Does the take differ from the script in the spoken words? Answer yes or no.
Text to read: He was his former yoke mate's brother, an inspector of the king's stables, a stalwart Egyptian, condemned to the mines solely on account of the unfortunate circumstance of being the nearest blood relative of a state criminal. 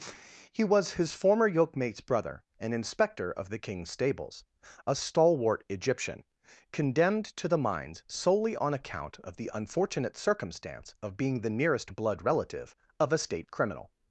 no